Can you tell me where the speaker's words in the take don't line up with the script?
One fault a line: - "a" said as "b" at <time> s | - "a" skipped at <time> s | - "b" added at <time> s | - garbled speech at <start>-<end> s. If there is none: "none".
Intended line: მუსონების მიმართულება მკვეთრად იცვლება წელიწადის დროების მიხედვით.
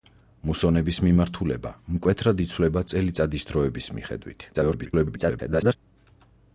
- garbled speech at 4.5-5.8 s